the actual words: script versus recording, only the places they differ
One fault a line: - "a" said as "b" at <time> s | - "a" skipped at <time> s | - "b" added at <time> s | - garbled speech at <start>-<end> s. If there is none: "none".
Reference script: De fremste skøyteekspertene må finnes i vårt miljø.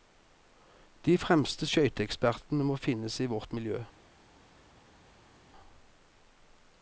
none